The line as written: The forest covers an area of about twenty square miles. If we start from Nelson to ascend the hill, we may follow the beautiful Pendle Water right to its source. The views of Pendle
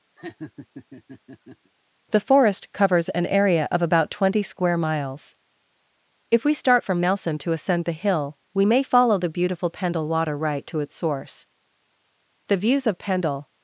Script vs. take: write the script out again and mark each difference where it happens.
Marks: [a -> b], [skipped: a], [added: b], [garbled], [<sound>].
[laugh] The forest covers an area of about twenty square miles. If we start from Nelson to ascend the hill, we may follow the beautiful Pendle Water right to its source. The views of Pendle